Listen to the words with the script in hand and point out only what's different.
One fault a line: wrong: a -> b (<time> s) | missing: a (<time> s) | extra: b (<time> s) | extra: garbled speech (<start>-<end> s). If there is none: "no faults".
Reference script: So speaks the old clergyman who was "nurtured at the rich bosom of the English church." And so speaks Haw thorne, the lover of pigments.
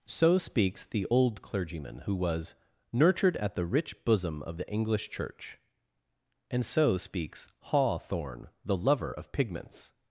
no faults